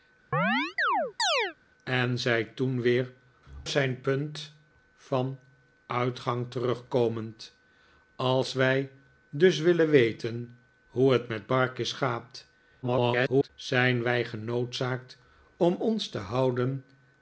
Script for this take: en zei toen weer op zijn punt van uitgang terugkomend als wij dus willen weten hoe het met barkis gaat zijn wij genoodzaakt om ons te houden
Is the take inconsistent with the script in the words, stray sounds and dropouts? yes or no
yes